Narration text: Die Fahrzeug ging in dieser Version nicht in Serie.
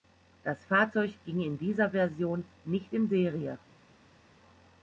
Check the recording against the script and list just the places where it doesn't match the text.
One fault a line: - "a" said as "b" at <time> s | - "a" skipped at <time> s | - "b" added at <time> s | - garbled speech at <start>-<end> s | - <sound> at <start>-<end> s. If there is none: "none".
- "Die" said as "Das" at 0.4 s